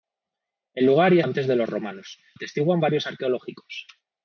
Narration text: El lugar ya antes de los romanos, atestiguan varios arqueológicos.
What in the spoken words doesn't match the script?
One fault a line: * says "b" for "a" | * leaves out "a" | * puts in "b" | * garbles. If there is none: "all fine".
all fine